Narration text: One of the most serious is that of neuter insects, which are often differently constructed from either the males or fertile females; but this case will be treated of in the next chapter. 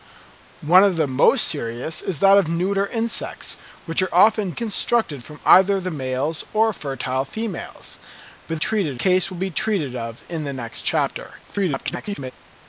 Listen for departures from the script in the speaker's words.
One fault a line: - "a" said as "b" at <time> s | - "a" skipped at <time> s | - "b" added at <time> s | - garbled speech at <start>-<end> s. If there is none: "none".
- "differently" skipped at 4.5 s
- "this" said as "treated" at 8.5 s
- garbled speech at 11.5-12.3 s